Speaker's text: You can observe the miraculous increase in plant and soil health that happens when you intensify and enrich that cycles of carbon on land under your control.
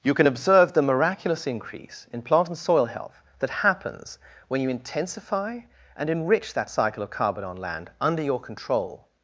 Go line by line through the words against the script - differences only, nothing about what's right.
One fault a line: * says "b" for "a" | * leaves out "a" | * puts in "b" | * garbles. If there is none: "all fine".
* says "cycle" for "cycles"